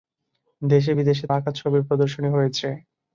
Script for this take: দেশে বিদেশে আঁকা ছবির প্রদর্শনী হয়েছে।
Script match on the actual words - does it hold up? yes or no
yes